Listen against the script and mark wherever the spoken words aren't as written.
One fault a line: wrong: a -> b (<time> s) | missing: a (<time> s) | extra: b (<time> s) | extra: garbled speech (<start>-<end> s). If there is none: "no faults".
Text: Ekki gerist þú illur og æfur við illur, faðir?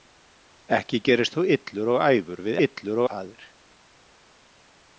no faults